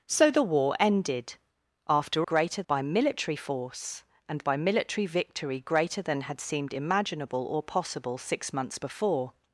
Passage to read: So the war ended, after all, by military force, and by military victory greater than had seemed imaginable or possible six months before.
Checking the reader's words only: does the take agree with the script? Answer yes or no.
no